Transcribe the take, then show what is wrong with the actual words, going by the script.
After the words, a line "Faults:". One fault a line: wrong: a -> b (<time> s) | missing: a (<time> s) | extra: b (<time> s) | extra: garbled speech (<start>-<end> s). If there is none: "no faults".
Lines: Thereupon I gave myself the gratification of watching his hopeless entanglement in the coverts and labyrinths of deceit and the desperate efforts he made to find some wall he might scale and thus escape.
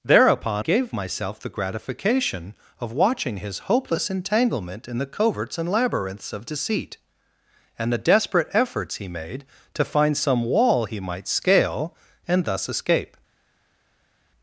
Thereupon gave myself the gratification of watching his hopeless entanglement in the coverts and labyrinths of deceit and the desperate efforts he made to find some wall he might scale and thus escape.
Faults:
missing: I (0.7 s)